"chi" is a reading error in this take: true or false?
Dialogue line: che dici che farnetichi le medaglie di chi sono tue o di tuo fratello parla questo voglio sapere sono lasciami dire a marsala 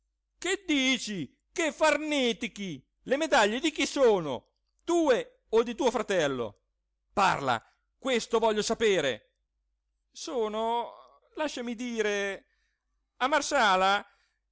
false